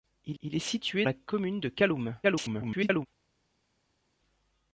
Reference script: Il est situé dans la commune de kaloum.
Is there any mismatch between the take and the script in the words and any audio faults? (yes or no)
yes